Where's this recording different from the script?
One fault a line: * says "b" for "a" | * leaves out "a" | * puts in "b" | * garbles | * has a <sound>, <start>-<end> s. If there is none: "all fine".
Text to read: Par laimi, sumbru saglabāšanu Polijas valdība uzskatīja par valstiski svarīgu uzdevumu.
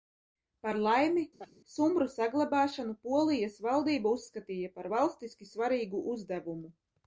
* has a laugh, 1.4-1.5 s